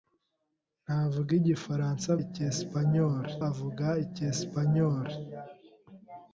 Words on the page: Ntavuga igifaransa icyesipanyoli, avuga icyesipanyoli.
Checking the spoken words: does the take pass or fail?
pass